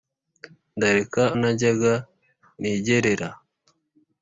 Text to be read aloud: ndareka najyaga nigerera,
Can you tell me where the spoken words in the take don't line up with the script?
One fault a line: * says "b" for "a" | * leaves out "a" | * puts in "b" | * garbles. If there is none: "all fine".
all fine